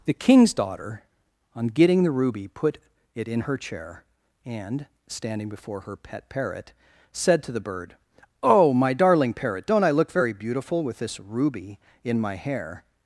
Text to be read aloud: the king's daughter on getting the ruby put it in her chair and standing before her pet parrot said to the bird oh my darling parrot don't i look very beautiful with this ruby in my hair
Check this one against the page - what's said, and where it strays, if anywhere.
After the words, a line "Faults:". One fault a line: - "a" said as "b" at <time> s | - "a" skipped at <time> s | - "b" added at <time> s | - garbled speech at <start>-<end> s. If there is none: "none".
the king's daughter on getting the ruby put it in her chair and standing before her pet parrot said to the bird oh my darling parrot don't i look very beautiful with this ruby in my hair
Faults:
none